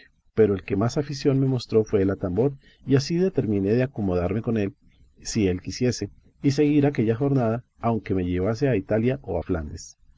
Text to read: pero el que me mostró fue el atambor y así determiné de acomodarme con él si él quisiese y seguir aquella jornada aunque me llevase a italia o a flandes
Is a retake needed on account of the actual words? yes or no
yes